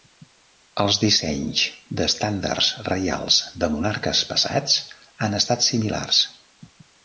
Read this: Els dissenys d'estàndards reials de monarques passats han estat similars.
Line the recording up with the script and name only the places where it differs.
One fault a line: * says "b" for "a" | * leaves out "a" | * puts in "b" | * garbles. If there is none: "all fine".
all fine